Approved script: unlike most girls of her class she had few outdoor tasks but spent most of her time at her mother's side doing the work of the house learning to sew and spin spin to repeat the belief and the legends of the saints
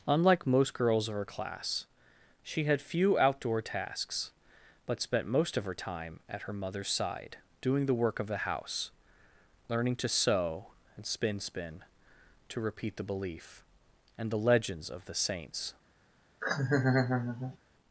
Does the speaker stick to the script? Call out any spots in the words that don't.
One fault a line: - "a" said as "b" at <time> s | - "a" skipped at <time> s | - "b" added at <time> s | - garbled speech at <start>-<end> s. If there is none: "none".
none